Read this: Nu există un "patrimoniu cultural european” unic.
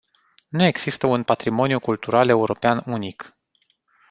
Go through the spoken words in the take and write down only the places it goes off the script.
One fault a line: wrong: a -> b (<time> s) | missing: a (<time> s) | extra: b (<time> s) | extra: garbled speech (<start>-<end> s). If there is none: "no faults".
no faults